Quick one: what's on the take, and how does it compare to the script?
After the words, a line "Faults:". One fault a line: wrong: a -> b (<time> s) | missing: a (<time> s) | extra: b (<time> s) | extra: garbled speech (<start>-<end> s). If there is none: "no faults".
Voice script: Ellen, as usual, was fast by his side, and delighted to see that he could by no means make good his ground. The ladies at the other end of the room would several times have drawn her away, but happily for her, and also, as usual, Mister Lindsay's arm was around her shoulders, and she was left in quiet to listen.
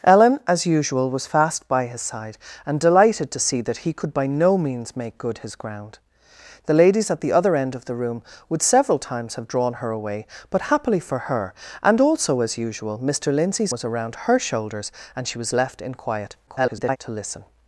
Ellen, as usual, was fast by his side, and delighted to see that he could by no means make good his ground. The ladies at the other end of the room would several times have drawn her away, but happily for her, and also, as usual, Mister Lindsay's was around her shoulders, and she was left in quiet [garbled] to listen.
Faults:
missing: arm (13.8 s)
extra: garbled speech (16.5-17.0 s)